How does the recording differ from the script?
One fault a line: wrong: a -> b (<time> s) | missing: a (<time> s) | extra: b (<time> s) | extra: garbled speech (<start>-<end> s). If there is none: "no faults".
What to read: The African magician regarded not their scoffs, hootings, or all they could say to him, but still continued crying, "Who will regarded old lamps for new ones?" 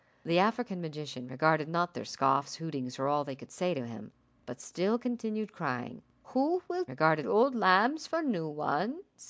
no faults